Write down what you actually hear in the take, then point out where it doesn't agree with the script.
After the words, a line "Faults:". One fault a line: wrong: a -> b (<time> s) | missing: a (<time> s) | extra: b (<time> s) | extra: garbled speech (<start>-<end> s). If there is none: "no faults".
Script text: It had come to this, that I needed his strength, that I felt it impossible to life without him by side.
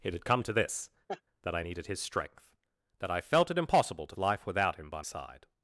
It had come to this, that I needed his strength, that I felt it impossible to life without him by side.
Faults:
no faults